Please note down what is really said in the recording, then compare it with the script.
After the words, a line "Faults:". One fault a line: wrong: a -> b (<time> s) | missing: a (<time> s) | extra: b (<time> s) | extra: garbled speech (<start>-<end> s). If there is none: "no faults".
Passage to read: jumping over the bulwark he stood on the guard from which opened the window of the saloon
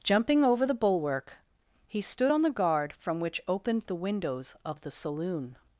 jumping over the bulwark he stood on the guard from which opened the windows of the saloon
Faults:
wrong: window -> windows (4.0 s)